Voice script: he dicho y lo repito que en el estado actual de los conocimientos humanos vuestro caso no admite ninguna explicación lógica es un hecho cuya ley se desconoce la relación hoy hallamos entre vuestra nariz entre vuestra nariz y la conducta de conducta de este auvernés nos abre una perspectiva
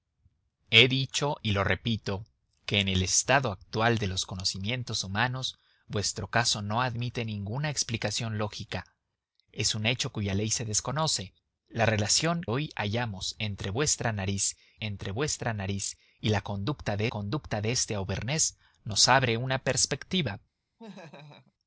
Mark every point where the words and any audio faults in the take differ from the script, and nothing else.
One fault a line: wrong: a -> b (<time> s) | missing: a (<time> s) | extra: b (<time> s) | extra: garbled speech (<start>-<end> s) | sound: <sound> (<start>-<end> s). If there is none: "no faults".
sound: laugh (20.8-21.5 s)